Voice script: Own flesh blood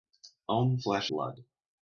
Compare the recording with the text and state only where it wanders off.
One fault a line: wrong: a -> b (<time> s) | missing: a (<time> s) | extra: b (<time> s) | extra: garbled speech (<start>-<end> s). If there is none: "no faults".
no faults